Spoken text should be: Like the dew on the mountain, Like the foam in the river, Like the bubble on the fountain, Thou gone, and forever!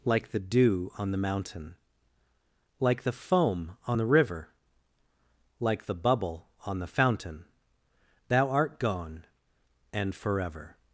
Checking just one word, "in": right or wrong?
wrong